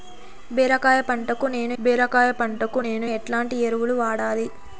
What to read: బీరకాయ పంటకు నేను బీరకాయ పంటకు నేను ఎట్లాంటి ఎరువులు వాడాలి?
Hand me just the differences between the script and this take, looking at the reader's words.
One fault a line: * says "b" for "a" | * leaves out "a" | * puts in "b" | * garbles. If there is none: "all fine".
all fine